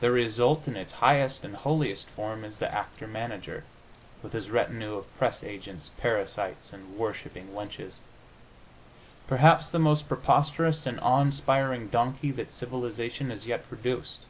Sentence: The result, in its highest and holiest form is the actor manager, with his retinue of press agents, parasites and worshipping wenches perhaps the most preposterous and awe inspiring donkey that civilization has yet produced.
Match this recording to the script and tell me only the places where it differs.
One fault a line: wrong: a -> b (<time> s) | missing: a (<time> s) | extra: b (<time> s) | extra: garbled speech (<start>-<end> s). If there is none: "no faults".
no faults